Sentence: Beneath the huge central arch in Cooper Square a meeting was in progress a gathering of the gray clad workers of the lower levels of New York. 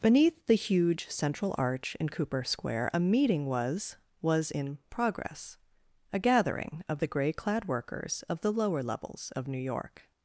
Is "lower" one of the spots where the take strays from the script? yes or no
no